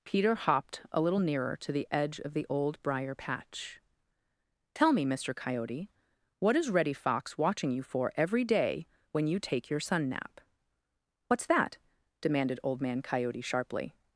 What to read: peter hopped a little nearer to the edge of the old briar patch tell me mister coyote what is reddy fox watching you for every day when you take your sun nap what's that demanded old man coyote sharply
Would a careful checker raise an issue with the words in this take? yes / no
no